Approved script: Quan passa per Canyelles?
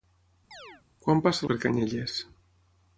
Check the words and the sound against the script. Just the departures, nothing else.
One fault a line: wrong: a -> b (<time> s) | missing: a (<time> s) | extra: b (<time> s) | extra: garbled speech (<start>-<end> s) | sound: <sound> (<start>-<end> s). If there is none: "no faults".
sound: chirp (0.5-0.8 s)